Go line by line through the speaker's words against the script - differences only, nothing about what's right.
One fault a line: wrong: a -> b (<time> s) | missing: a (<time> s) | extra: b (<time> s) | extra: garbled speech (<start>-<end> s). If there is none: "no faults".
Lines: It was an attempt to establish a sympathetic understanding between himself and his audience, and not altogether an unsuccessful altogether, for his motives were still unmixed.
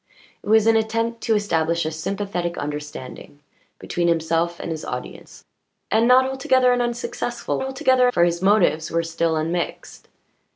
no faults